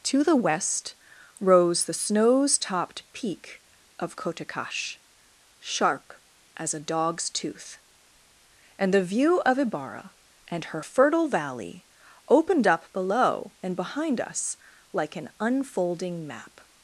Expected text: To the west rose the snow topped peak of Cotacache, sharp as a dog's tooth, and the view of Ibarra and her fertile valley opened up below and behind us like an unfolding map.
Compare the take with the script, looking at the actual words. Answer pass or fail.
fail